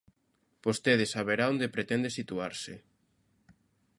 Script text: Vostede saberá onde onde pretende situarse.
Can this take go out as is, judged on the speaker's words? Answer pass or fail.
fail